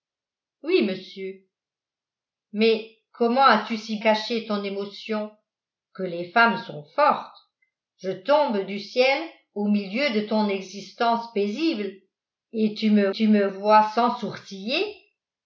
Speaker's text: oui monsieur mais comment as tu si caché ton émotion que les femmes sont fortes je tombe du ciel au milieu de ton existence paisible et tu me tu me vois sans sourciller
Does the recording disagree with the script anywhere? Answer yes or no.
no